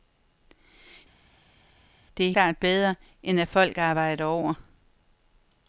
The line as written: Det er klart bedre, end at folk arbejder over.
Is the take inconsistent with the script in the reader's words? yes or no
no